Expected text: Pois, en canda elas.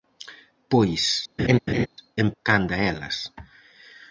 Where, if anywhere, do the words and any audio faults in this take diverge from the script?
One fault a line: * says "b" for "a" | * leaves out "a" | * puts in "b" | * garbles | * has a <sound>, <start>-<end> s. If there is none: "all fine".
* has a laugh, 1.4-1.9 s